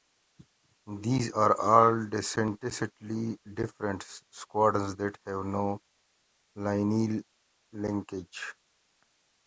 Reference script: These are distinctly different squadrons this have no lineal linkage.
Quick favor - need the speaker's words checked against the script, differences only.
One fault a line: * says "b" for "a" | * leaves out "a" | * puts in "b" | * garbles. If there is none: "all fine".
* puts in "all"
* says "that" for "this"